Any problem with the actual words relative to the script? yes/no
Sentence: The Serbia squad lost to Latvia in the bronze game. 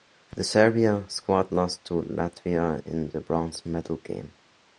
yes